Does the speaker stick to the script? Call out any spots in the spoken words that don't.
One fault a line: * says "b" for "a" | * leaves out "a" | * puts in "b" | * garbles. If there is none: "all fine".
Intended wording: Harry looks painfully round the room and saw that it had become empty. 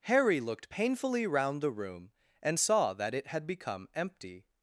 * says "looked" for "looks"